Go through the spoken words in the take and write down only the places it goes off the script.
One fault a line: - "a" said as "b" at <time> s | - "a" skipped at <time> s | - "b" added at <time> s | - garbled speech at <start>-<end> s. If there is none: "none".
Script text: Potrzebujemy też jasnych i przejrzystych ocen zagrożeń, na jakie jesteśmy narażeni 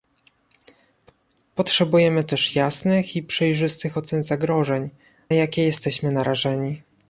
- "na" skipped at 4.9 s